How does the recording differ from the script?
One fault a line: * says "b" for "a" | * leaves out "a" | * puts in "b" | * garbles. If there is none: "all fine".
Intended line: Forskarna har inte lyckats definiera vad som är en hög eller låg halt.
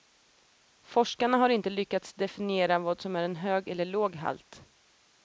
all fine